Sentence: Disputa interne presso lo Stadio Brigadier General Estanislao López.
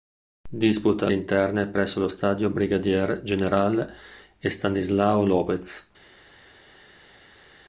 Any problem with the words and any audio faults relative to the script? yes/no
no